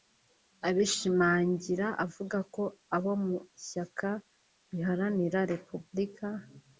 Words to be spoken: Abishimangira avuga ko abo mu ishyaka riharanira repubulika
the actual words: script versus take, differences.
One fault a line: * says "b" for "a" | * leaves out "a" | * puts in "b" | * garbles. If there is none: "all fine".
all fine